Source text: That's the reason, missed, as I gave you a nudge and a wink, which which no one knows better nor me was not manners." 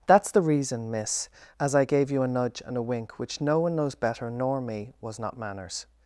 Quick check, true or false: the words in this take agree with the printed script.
false